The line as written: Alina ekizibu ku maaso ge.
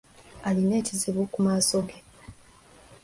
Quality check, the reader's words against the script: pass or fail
pass